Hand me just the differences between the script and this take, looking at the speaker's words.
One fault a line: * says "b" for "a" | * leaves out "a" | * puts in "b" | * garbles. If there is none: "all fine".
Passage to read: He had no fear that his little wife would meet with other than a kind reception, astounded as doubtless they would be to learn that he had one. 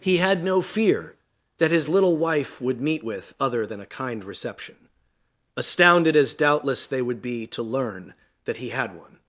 all fine